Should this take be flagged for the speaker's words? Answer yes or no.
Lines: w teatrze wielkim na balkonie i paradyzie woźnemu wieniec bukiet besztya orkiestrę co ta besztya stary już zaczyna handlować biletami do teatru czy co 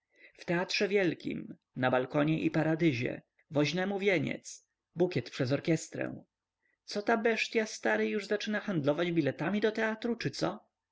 yes